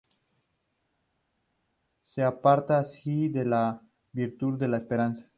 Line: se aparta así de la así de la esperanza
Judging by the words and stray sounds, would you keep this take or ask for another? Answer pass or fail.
fail